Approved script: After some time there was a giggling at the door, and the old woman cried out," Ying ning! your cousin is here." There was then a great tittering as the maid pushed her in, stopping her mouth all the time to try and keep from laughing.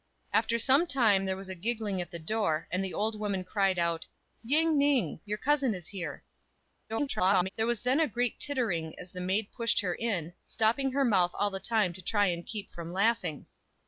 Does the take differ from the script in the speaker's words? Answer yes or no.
yes